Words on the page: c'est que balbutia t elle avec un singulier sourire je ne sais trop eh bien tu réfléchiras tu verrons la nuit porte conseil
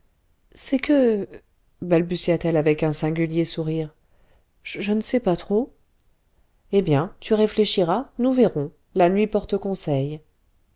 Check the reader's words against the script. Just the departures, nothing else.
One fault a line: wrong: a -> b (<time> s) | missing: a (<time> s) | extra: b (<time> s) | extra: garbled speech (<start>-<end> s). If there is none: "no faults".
extra: pas (5.2 s)
wrong: tu -> nous (8.2 s)